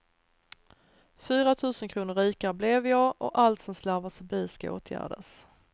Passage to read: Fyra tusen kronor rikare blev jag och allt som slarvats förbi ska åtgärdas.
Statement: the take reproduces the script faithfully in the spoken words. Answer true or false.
true